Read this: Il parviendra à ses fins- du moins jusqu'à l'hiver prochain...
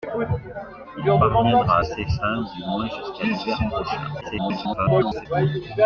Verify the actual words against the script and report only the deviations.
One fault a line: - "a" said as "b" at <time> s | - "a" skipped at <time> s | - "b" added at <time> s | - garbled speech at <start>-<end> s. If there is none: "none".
- garbled speech at 4.2-5.3 s